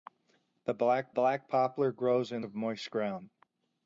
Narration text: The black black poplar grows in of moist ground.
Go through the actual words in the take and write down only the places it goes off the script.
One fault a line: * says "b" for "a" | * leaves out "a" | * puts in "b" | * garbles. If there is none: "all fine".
all fine